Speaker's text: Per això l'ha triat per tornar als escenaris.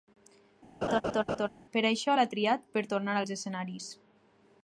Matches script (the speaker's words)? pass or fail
pass